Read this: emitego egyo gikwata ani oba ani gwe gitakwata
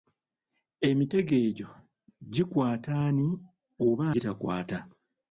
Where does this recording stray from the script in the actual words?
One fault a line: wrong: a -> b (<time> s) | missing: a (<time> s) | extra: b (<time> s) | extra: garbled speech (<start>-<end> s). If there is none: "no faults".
missing: ani gwe (4.0 s)